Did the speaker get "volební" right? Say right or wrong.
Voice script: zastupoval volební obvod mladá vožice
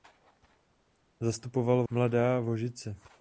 wrong